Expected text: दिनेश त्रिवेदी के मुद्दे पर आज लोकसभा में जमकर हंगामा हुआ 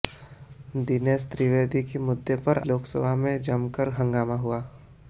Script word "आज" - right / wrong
wrong